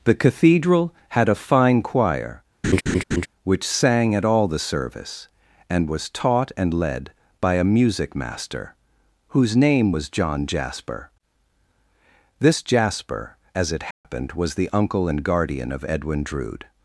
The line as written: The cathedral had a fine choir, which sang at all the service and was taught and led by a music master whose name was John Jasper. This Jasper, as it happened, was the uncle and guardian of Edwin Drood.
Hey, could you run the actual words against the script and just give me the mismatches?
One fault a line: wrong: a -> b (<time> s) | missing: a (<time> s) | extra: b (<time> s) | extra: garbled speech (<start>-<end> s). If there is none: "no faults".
no faults